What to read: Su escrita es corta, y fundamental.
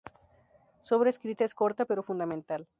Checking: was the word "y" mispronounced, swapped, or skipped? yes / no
yes